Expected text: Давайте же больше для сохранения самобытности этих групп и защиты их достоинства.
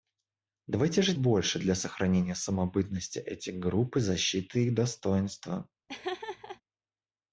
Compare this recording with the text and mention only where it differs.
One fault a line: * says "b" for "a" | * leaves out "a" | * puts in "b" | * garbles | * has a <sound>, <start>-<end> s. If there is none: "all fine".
* has a laugh, 5.9-6.6 s